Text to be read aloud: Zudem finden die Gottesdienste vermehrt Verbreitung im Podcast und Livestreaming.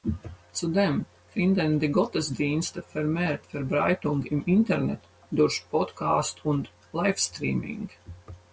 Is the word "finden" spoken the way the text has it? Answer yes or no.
yes